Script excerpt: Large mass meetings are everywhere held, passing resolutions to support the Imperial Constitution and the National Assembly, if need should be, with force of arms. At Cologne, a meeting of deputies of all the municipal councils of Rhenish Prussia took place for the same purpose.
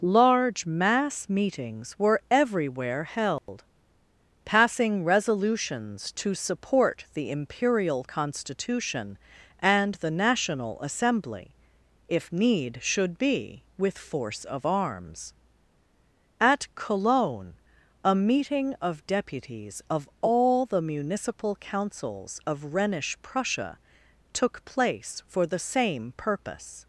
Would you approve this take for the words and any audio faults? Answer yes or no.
no